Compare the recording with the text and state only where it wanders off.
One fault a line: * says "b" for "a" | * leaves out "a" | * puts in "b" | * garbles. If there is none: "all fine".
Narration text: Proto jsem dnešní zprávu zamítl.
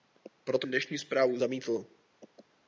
* leaves out "jsem"